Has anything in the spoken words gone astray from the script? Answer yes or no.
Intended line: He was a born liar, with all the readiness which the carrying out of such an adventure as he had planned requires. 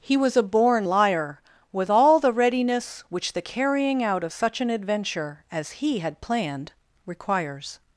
no